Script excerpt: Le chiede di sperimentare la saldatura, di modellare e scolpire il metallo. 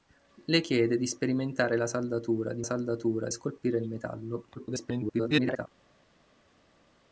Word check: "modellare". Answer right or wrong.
wrong